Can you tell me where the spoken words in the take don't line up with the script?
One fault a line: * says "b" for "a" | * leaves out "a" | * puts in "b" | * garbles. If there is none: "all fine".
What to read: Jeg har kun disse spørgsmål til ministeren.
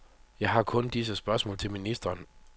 all fine